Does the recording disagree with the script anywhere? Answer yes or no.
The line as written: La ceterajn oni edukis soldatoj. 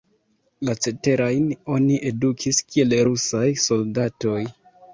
yes